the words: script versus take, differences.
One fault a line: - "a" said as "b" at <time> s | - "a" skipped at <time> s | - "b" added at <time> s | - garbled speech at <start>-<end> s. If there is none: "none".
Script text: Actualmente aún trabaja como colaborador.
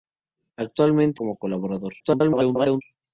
- "aún trabaja" skipped at 1.2 s
- garbled speech at 2.0-2.8 s